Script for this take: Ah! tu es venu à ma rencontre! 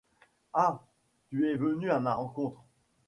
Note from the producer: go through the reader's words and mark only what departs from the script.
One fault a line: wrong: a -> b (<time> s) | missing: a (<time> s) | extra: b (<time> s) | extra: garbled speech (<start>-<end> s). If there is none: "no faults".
no faults